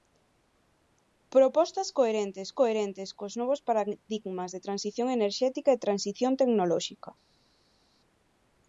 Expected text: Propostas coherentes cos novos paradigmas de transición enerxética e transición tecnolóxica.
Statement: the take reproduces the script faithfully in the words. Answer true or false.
false